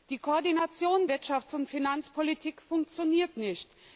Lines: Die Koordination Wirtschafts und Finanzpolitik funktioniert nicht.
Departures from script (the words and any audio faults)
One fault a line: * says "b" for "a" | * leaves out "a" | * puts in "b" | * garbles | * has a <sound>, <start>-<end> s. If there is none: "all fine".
all fine